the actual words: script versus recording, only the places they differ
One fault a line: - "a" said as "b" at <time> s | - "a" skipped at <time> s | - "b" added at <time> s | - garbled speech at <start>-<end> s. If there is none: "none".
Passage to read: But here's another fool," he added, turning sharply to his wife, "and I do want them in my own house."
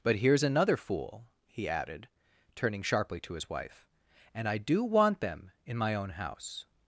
none